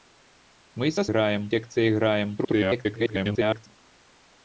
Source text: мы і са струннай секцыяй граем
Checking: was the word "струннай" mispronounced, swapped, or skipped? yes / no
yes